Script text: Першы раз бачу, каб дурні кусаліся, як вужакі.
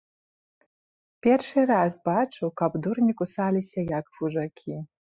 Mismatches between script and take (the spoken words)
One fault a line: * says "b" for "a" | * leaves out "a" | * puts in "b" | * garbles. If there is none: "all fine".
all fine